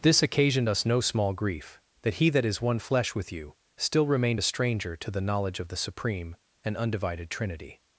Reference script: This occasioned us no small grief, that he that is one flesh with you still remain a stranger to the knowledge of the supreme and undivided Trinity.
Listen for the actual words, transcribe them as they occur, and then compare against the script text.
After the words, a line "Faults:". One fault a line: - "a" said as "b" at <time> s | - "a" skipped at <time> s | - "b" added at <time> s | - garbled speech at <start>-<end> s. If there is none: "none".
This occasioned us no small grief, that he that is one flesh with you still remained a stranger to the knowledge of the supreme and undivided Trinity.
Faults:
- "remain" said as "remained" at 4.1 s